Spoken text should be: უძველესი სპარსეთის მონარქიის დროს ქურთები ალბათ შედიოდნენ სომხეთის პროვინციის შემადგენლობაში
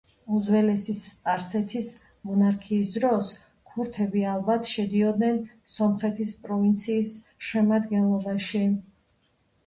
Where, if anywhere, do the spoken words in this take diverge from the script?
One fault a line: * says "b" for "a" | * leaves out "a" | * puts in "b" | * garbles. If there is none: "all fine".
all fine